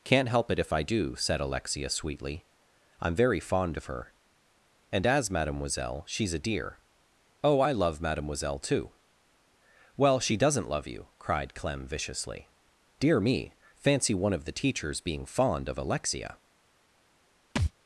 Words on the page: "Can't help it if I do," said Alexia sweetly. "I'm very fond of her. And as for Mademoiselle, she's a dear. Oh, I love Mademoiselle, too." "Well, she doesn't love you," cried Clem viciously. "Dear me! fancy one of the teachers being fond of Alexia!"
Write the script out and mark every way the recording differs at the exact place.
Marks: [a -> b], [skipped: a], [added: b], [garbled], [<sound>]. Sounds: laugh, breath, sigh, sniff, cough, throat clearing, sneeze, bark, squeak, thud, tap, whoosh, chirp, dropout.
"Can't help it if I do," said Alexia sweetly. "I'm very fond of her. And as [skipped: for] Mademoiselle, she's a dear. Oh, I love Mademoiselle, too." "Well, she doesn't love you," cried Clem viciously. "Dear me! fancy one of the teachers being fond of Alexia!" [thud]